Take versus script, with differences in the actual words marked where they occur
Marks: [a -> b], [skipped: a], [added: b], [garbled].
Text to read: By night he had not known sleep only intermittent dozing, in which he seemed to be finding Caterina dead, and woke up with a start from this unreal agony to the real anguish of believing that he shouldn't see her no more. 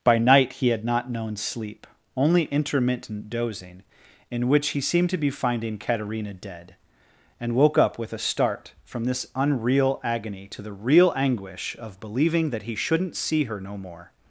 By night he had not known sleep only intermittent dozing, in which he seemed to be finding Caterina dead, and woke up with a start from this unreal agony to the real anguish of believing that he shouldn't see her no more.